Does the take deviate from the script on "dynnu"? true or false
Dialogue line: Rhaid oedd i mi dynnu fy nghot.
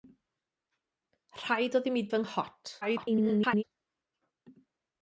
true